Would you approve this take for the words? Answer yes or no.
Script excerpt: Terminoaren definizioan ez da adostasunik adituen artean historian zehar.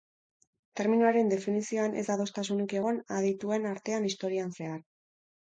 no